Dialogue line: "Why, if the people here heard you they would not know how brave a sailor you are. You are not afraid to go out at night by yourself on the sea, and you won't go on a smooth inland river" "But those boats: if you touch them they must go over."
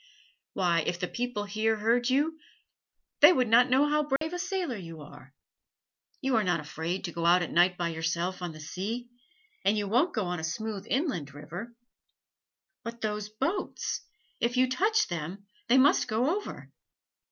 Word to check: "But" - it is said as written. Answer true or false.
true